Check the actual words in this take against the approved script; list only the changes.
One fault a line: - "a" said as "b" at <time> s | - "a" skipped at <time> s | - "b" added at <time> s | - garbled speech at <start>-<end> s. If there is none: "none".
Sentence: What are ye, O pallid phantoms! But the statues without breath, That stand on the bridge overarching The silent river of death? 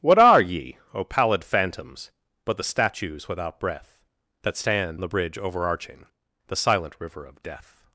- "on" skipped at 5.0 s